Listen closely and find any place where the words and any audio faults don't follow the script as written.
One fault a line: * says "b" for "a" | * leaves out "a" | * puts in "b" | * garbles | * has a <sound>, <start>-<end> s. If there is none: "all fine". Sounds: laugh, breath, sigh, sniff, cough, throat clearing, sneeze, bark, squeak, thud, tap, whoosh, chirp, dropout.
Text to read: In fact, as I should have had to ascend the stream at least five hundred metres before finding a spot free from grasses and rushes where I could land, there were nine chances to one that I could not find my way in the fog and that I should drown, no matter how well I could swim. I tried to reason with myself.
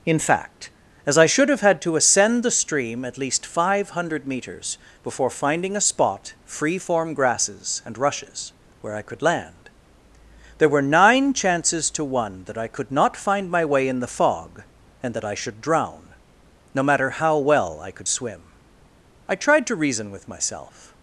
* says "form" for "from"